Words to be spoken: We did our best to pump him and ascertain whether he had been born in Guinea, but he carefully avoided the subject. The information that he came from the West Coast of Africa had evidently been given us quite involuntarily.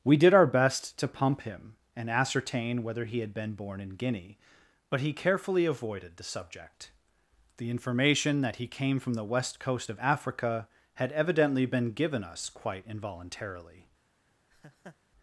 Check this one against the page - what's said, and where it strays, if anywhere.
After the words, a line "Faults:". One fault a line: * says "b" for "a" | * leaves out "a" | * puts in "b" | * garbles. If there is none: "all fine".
We did our best to pump him and ascertain whether he had been born in Guinea, but he carefully avoided the subject. The information that he came from the West Coast of Africa had evidently been given us quite involuntarily.
Faults:
all fine